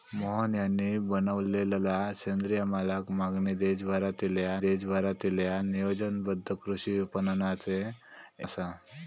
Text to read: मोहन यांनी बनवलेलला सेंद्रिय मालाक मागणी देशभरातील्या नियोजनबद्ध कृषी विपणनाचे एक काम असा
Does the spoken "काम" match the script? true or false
false